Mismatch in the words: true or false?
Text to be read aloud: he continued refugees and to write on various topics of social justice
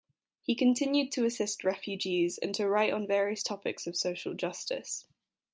true